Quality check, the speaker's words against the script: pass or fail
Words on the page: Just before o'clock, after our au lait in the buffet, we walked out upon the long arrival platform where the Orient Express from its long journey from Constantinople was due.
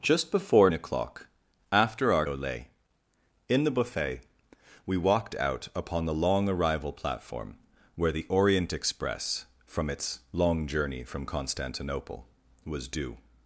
pass